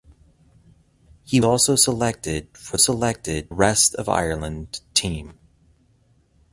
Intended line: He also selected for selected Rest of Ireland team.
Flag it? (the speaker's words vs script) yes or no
no